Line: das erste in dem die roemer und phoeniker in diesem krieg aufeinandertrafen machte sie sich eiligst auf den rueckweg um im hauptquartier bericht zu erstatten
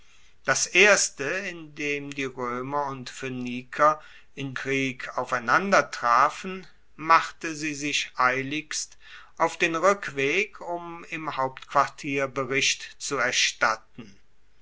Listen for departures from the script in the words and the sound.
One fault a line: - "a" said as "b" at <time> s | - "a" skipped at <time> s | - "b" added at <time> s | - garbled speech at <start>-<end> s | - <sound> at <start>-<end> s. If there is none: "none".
- "diesem" skipped at 4.5 s